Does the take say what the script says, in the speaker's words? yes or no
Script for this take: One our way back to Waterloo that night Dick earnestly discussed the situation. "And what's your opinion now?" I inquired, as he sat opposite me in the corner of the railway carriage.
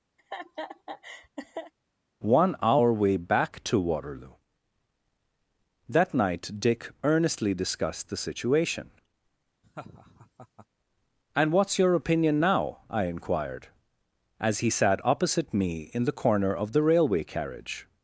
yes